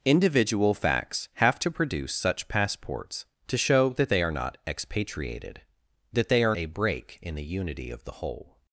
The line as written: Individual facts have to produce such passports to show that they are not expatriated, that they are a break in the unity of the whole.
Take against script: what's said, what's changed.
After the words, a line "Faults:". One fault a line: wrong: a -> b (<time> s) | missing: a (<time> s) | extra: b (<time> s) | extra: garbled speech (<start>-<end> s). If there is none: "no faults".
Individual facts have to produce such passports to show that they are not expatriated, that they are a break in the unity of the whole.
Faults:
no faults